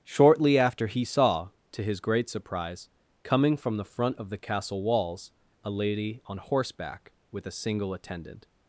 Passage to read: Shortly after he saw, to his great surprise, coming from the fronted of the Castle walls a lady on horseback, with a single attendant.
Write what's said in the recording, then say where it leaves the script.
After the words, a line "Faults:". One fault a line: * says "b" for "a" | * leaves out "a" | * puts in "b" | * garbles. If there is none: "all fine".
Shortly after he saw, to his great surprise, coming from the front of the Castle walls a lady on horseback, with a single attendant.
Faults:
* says "front" for "fronted"